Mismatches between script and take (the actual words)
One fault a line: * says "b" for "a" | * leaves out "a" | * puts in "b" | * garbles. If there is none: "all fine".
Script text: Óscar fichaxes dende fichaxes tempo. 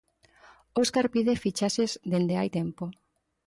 * puts in "pide"
* says "hai" for "fichaxes"